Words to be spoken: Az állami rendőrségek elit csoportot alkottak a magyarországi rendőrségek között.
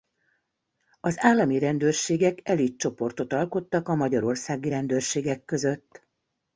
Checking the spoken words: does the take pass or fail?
pass